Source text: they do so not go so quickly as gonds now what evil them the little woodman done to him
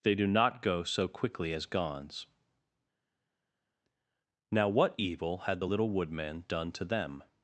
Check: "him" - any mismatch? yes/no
yes